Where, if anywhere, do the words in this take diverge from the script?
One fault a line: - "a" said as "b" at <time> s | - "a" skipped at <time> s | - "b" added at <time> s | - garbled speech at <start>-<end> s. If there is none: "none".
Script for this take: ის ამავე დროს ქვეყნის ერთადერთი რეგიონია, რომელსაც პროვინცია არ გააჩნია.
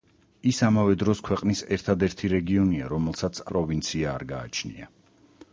none